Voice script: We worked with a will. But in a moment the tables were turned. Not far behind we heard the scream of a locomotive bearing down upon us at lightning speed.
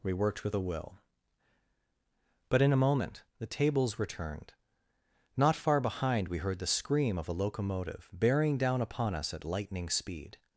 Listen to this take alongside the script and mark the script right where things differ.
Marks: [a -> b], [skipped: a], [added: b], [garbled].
We worked with a will. But in a moment the tables were turned. Not far behind we heard the scream of a locomotive bearing down upon us at lightning speed.